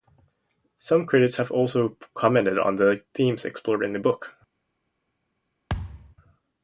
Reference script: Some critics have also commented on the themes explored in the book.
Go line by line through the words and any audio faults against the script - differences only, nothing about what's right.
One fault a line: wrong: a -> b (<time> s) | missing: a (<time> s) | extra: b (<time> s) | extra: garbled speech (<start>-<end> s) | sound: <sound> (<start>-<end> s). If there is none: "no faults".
sound: thud (5.7-6.2 s)